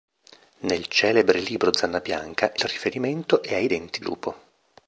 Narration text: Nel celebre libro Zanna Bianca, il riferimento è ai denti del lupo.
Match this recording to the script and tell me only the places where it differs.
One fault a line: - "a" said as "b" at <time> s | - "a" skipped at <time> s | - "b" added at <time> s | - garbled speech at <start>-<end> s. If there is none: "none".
- "il" skipped at 2.5 s
- "del" skipped at 4.0 s